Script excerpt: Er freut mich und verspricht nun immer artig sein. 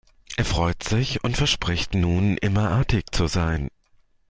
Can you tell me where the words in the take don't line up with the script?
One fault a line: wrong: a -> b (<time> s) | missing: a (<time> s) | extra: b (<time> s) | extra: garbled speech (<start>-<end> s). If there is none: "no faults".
wrong: mich -> sich (0.8 s)
extra: zu (3.1 s)